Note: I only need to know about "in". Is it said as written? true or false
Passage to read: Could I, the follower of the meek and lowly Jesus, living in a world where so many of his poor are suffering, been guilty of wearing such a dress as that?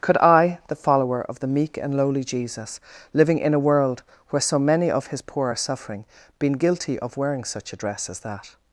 true